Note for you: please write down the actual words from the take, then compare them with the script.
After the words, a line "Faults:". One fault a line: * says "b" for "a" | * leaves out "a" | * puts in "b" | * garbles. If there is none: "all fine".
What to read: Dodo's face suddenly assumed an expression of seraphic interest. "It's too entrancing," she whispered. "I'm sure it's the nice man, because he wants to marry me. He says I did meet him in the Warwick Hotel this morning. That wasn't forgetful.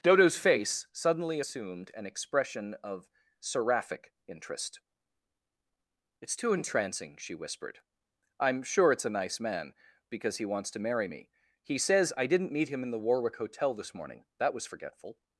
Dodo's face suddenly assumed an expression of seraphic interest. "It's too entrancing," she whispered. "I'm sure it's a nice man, because he wants to marry me. He says I didn't meet him in the Warwick Hotel this morning. That was forgetful.
Faults:
* says "a" for "the"
* says "didn't" for "did"
* says "was" for "wasn't"